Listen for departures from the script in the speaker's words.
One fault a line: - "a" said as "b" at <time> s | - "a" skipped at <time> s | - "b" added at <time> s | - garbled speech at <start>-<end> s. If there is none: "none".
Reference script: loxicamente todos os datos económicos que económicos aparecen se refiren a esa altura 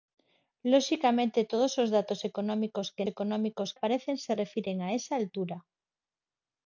none